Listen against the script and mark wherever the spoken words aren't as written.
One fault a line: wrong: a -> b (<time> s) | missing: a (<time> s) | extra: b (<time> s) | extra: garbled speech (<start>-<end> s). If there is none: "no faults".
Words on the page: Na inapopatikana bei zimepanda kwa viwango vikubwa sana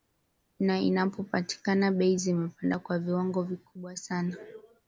no faults